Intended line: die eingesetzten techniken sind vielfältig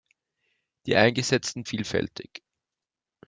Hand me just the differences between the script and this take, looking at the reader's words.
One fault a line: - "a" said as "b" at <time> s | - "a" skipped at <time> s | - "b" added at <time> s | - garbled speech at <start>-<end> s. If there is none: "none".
- "techniken sind" skipped at 1.6 s